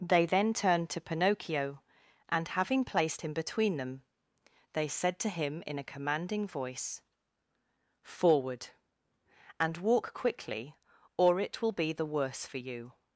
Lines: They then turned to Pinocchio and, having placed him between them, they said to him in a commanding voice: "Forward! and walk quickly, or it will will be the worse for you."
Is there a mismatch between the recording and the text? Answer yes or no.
yes